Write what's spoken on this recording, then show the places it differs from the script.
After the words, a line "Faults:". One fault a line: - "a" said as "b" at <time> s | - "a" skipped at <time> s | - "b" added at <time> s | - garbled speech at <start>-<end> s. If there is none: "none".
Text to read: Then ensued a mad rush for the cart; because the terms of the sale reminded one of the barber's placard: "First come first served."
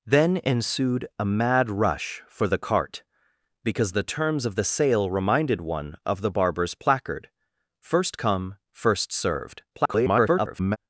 Then ensued a mad rush for the cart; because the terms of the sale reminded one of the barber's placard: "First come first served." [garbled]
Faults:
- garbled speech at 9.7-10.8 s